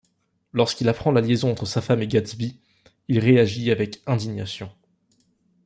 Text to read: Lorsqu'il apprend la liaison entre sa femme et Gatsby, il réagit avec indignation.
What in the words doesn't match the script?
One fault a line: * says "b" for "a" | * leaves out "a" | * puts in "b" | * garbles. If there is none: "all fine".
all fine